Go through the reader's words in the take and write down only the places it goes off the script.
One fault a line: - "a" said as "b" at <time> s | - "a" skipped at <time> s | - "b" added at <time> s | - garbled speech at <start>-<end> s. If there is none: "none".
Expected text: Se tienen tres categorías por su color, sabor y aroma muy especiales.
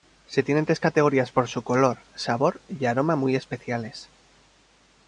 none